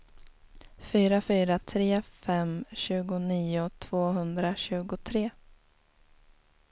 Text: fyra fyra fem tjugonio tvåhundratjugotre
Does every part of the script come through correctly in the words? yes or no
no